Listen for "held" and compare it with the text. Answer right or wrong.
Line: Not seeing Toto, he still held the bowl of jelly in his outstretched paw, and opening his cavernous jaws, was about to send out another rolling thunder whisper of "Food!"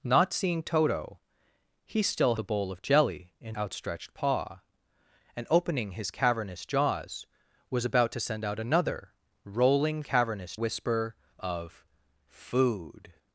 wrong